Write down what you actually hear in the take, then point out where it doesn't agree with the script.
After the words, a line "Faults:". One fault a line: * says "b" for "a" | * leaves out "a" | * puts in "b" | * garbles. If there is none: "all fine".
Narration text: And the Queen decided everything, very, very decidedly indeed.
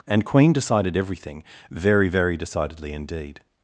And Queen decided everything, very, very decidedly indeed.
Faults:
* leaves out "the"